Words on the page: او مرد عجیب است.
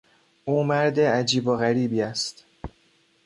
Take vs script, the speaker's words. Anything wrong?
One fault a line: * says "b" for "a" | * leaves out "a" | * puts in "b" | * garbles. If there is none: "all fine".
* puts in "و غریبی"